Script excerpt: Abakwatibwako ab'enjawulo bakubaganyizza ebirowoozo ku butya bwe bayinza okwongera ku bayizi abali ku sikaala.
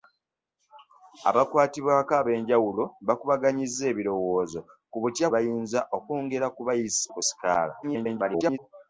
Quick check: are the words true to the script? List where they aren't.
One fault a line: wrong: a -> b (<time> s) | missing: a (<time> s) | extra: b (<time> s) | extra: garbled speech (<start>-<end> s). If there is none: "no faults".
missing: bwe (5.3 s)
missing: abali (7.0 s)
extra: garbled speech (7.8-8.6 s)